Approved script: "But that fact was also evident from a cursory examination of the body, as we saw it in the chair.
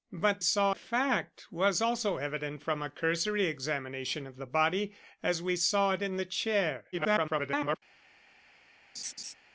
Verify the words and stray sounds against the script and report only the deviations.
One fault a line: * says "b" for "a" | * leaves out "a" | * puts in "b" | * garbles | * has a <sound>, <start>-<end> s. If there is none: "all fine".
* says "saw" for "that"
* garbles
* has a laugh, 8.9-9.3 s